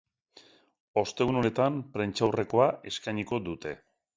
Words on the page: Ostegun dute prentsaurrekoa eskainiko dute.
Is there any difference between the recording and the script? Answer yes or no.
yes